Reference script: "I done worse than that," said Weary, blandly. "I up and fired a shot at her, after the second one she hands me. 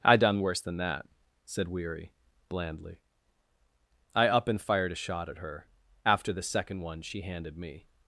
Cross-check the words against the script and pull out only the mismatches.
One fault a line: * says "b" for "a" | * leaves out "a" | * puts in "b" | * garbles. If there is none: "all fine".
* says "handed" for "hands"